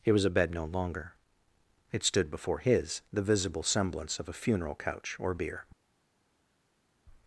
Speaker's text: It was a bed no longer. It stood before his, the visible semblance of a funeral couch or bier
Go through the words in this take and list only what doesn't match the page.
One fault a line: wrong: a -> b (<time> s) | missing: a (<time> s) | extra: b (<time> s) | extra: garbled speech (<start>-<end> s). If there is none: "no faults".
no faults